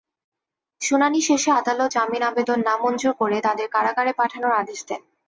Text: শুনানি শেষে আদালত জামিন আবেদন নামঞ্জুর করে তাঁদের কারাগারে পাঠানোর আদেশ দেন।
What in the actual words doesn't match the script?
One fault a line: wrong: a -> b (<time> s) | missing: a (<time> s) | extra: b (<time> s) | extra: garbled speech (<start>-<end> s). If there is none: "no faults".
no faults